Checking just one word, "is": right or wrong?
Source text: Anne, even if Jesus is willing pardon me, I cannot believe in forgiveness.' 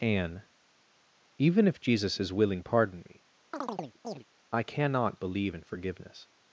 right